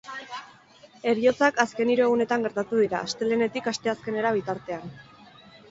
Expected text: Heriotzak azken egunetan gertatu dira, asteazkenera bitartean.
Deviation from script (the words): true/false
true